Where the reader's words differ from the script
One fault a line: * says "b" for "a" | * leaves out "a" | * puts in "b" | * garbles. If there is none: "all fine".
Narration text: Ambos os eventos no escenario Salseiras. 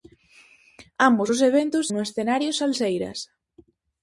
all fine